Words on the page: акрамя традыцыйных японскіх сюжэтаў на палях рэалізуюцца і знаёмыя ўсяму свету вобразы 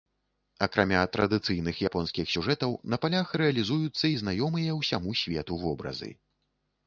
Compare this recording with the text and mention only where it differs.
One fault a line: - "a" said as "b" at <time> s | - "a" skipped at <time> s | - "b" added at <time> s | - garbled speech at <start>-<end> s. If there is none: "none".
none